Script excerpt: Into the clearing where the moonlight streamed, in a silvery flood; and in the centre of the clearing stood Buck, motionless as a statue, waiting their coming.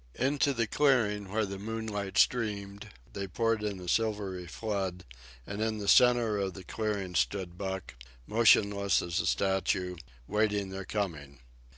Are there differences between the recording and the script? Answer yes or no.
yes